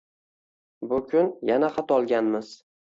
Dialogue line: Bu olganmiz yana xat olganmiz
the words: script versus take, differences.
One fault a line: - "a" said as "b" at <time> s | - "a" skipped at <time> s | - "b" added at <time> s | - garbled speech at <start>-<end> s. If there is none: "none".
- "olganmiz" said as "kun" at 1.1 s